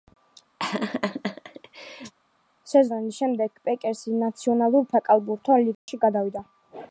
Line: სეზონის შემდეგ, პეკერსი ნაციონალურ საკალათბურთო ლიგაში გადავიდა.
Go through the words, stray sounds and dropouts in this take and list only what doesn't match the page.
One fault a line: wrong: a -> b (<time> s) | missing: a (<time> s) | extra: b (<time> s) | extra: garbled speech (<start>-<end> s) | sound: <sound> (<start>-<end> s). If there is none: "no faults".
sound: laugh (0.6-2.1 s)
sound: dropout (5.7-5.9 s)